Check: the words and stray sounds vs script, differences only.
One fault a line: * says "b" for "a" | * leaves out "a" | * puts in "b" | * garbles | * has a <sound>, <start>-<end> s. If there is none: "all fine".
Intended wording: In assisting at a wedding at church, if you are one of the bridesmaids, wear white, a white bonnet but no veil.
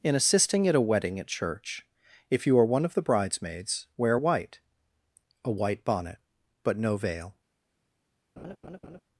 * has a laugh, 8.4-9.0 s